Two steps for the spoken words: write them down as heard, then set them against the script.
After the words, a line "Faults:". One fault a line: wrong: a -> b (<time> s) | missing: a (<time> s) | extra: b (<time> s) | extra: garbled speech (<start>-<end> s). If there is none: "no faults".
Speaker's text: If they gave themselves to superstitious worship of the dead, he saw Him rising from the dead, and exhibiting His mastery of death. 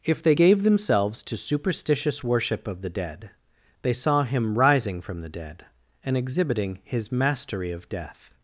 If they gave themselves to superstitious worship of the dead, they saw Him rising from the dead, and exhibiting His mastery of death.
Faults:
wrong: he -> they (3.8 s)